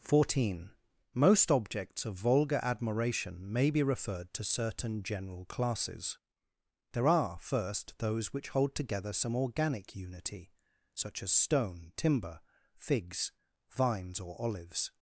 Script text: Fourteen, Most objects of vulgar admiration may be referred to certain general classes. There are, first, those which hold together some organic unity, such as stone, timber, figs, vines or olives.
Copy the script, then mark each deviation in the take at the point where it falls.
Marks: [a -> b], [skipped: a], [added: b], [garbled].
Fourteen, Most objects of vulgar admiration may be referred to certain general classes. There are, first, those which hold together some organic unity, such as stone, timber, figs, vines or olives.